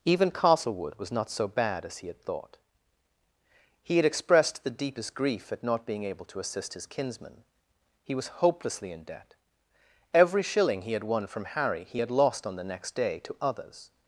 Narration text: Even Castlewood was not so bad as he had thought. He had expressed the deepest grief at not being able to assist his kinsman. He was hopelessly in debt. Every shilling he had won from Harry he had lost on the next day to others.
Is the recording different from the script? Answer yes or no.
no